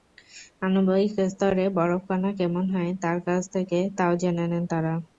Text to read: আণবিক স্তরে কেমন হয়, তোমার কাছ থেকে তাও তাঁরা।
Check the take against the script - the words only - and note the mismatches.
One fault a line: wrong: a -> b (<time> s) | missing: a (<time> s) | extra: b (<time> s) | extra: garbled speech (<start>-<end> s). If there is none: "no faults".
extra: বরফকণা (1.8 s)
wrong: তোমার -> তার (3.0 s)
extra: জেনে নেন (4.2 s)